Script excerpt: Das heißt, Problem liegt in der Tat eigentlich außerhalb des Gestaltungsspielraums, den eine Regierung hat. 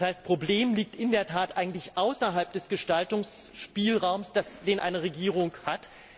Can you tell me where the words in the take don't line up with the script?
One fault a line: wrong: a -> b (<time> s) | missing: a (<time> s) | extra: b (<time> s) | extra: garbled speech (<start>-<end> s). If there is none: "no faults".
no faults